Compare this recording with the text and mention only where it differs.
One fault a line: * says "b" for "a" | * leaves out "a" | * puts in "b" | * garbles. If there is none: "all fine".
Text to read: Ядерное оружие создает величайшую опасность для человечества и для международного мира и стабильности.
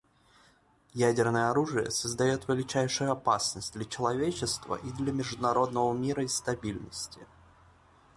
all fine